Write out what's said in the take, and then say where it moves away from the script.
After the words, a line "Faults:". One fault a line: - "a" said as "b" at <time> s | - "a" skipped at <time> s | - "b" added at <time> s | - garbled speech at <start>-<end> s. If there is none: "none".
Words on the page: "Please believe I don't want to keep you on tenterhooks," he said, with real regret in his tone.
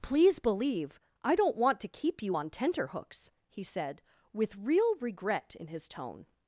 "Please believe I don't want to keep you on tenterhooks," he said, with real regret in his tone.
Faults:
none